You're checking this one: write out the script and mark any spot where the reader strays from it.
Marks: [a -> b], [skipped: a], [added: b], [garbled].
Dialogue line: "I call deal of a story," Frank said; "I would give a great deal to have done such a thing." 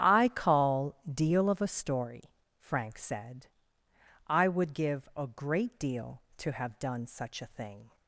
"I call deal of a story," Frank said; "I would give a great deal to have done such a thing."